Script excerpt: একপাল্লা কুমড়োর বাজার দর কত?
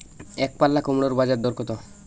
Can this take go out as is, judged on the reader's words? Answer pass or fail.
pass